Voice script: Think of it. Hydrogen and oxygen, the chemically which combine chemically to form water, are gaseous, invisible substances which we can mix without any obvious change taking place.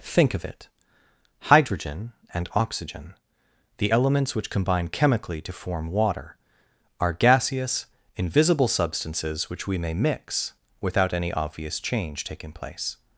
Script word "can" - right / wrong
wrong